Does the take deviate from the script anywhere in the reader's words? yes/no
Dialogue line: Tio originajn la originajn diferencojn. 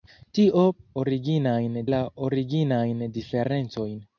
no